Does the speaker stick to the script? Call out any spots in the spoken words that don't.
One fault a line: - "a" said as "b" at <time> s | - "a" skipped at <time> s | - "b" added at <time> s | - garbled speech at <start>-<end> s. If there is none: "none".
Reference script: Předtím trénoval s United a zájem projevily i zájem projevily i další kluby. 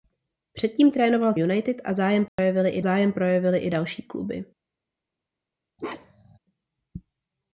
none